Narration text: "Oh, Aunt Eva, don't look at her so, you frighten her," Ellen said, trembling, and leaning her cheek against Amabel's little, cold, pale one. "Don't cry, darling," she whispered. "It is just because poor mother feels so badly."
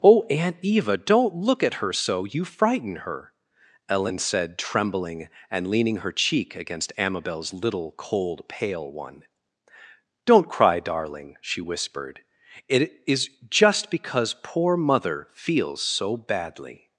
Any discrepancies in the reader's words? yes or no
no